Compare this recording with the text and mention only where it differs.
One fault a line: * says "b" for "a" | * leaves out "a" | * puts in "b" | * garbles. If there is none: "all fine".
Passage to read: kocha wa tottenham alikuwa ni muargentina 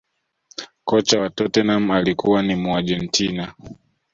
all fine